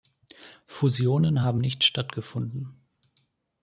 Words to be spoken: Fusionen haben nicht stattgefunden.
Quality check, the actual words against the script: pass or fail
pass